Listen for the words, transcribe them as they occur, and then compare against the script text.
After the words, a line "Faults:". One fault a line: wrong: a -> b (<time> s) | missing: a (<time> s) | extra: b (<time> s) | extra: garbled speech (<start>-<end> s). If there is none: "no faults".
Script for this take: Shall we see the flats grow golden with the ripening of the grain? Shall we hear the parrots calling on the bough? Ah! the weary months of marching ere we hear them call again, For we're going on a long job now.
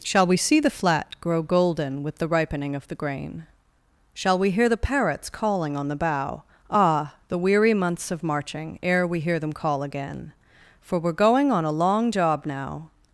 Shall we see the flat grow golden with the ripening of the grain? Shall we hear the parrots calling on the bough? Ah! the weary months of marching ere we hear them call again, For we're going on a long job now.
Faults:
wrong: flats -> flat (0.7 s)